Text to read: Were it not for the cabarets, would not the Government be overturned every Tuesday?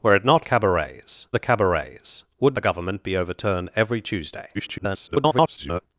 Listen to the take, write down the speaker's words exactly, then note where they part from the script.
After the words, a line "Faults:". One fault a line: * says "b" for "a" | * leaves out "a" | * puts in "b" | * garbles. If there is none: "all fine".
Were it not cabarets the cabarets, would the Government be overturned every Tuesday? [garbled]
Faults:
* says "cabarets" for "for"
* leaves out "not"
* garbles